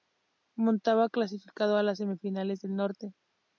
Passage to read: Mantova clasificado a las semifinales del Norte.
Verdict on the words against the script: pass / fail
pass